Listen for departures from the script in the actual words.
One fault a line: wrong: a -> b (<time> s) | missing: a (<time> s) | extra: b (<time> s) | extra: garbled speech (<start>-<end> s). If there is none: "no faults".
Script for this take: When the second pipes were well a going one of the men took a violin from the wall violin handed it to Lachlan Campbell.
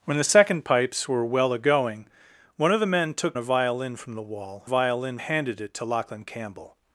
no faults